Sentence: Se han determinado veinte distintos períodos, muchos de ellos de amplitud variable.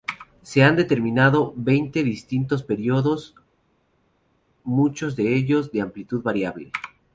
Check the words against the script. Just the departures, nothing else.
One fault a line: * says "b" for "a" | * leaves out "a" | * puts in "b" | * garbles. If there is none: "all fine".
all fine